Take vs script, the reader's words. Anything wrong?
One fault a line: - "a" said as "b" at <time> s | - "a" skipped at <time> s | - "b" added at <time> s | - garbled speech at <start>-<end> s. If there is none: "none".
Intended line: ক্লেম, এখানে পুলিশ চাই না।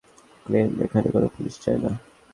- "কোনো" added at 1.1 s